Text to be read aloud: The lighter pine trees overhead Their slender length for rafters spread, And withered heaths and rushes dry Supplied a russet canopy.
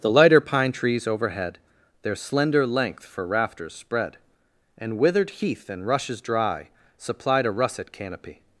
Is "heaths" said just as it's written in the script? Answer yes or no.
no